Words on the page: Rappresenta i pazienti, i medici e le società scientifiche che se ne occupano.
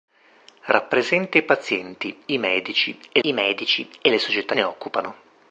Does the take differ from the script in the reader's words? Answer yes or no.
yes